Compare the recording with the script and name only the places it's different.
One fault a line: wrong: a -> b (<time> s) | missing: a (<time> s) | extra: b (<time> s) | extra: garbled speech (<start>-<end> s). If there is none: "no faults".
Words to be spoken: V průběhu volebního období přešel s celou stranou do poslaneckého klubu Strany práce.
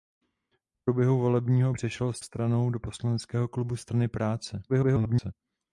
missing: období (1.7 s)
missing: celou (2.2 s)
extra: garbled speech (4.7-5.3 s)